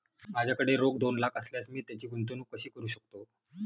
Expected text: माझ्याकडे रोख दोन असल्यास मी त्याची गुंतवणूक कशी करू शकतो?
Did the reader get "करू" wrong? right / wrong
right